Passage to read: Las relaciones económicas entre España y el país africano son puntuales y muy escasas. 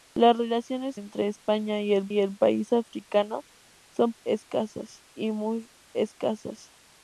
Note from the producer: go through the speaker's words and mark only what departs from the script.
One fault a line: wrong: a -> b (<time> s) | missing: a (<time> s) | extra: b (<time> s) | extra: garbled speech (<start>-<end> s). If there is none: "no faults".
missing: económicas (1.0 s)
extra: y el (2.1 s)
wrong: puntuales -> escasas (4.2 s)